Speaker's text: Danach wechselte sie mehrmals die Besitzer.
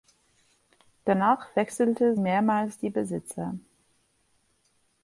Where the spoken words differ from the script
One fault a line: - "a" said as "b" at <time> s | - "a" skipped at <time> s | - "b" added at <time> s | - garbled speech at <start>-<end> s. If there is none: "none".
- "sie" skipped at 2.2 s